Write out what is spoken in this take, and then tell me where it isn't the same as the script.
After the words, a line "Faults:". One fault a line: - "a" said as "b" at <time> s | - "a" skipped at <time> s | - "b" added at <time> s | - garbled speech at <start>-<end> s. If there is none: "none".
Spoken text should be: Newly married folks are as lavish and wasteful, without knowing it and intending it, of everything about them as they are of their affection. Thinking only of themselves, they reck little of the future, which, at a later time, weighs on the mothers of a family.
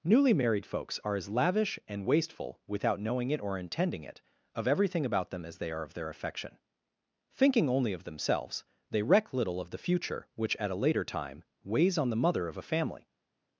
Newly married folks are as lavish and wasteful, without knowing it or intending it, of everything about them as they are of their affection. Thinking only of themselves, they reck little of the future, which, at a later time, weighs on the mother of a family.
Faults:
- "and" said as "or" at 3.4 s
- "mothers" said as "mother" at 12.2 s